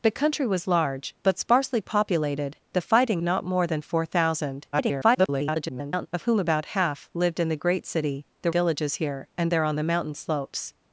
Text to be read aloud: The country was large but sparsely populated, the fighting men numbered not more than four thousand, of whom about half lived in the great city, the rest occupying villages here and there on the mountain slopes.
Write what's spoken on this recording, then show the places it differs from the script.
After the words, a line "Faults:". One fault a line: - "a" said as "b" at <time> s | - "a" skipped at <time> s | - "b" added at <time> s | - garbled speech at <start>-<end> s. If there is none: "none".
The country was large but sparsely populated, the fighting not more than four thousand, [garbled] of whom about half lived in the great city, the villages here and there on the mountain slopes.
Faults:
- "men numbered" skipped at 3.2 s
- garbled speech at 4.7-6.1 s
- "rest occupying" skipped at 8.5 s